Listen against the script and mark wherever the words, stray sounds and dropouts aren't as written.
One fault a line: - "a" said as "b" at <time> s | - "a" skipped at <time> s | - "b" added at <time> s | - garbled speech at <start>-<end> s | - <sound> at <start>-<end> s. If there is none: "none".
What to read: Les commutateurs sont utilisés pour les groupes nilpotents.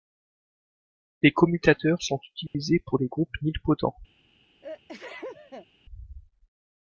- dropout at 2.5-2.5 s
- sneeze at 4.6-5.7 s